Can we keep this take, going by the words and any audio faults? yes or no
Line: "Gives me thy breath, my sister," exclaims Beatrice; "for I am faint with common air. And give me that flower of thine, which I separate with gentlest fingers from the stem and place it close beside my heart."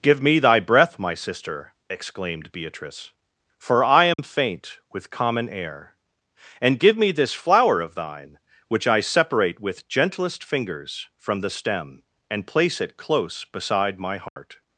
no